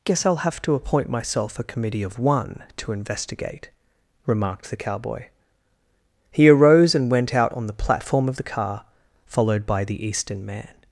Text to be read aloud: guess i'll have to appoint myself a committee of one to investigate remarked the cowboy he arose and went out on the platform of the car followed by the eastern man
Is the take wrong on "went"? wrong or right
right